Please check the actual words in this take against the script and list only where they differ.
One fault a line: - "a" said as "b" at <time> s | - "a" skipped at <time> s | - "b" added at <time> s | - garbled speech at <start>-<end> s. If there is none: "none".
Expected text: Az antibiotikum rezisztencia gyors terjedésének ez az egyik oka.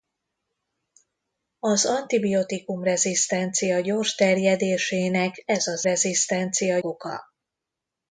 - "egyik" said as "rezisztencia" at 5.8 s